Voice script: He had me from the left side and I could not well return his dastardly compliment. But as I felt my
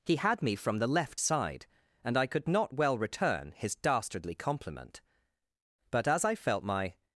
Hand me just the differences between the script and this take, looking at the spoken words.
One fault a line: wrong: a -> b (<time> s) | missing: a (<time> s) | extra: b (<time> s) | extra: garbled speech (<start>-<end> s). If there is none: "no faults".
no faults